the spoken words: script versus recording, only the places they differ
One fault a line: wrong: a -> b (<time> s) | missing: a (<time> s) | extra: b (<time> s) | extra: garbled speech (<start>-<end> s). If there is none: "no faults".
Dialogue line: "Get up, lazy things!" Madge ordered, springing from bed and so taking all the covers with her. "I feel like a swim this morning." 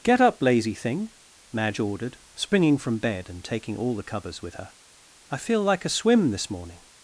wrong: things -> thing (0.7 s)
missing: so (3.4 s)